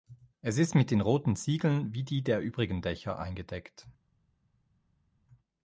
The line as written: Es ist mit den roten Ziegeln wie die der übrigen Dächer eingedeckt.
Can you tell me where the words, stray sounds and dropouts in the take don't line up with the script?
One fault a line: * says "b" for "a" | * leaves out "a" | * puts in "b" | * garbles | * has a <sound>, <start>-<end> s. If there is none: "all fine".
all fine